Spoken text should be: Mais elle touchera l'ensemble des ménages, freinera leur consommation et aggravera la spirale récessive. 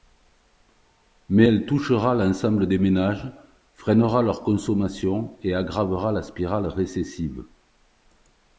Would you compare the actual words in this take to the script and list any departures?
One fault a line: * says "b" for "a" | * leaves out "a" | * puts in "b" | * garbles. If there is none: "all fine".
all fine